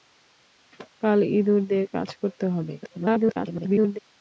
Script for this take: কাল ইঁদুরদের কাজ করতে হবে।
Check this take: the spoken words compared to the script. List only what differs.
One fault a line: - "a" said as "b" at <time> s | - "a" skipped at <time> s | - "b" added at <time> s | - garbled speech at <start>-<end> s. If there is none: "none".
- garbled speech at 2.8-4.0 s